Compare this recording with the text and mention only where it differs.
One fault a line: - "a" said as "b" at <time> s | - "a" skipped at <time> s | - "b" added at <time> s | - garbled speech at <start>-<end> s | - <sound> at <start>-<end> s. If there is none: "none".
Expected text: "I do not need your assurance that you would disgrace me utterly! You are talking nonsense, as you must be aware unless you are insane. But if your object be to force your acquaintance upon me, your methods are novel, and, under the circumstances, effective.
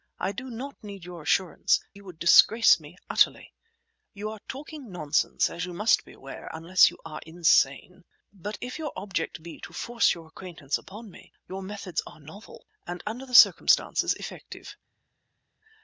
- "that" skipped at 1.8 s